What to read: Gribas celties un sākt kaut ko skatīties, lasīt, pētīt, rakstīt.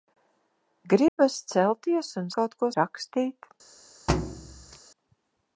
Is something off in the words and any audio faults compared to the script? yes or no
yes